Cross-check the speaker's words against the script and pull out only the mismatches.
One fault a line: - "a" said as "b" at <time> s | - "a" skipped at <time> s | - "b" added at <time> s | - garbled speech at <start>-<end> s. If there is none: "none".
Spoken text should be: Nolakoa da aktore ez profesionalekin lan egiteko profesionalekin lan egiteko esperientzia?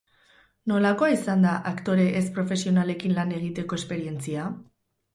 - "izan" added at 1.1 s
- "profesionalekin lan egiteko" skipped at 3.8 s